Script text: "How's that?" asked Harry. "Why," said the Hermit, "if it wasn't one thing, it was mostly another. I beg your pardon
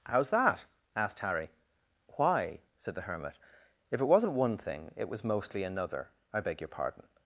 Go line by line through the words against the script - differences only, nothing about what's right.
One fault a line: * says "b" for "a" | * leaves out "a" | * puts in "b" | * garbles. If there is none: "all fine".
all fine